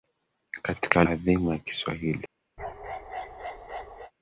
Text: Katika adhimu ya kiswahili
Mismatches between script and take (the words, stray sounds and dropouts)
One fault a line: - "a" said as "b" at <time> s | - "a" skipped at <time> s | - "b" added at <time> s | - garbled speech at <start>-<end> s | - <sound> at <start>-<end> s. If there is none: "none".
- bark at 2.6-4.1 s